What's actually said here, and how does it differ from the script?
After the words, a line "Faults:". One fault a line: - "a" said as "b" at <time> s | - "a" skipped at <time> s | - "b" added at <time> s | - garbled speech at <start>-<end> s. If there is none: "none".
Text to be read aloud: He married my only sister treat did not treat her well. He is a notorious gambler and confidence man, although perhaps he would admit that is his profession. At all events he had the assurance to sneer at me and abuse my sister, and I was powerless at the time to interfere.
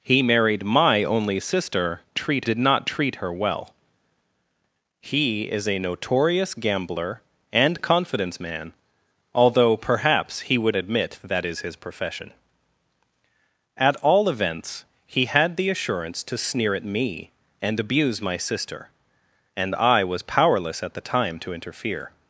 He married my only sister treat did not treat her well. He is a notorious gambler and confidence man, although perhaps he would admit that is his profession. At all events he had the assurance to sneer at me and abuse my sister, and I was powerless at the time to interfere.
Faults:
none